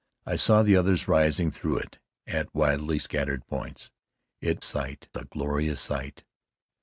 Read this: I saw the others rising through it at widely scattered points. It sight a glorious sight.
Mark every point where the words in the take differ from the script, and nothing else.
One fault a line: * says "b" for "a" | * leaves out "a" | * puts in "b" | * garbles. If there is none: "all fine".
all fine